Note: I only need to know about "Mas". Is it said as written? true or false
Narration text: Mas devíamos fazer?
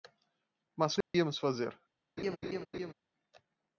true